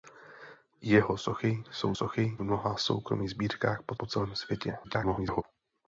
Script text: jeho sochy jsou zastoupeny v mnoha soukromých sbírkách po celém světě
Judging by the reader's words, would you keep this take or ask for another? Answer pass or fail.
fail